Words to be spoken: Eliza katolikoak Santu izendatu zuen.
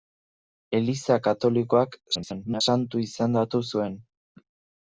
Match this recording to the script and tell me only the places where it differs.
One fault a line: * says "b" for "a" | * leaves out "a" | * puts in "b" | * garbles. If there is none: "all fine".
* garbles